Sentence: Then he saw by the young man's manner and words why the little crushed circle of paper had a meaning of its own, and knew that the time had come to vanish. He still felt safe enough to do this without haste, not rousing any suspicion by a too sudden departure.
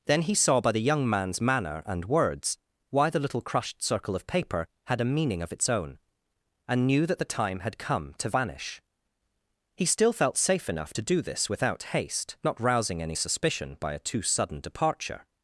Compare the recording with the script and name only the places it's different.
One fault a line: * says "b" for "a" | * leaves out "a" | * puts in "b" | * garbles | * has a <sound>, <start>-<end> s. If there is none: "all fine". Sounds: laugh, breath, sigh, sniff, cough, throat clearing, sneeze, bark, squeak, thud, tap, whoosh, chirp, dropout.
all fine